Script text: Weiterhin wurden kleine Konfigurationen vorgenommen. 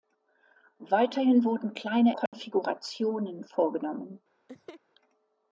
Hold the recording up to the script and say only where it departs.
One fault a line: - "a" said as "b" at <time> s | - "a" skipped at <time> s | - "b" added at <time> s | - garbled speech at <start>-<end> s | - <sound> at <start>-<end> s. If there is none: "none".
- dropout at 2.3-2.3 s
- laugh at 4.5-4.8 s